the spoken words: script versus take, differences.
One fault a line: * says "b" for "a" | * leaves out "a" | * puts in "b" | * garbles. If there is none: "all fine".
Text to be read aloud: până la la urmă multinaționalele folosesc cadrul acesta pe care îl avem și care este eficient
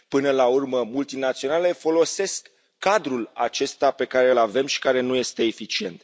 * leaves out "la"
* puts in "nu"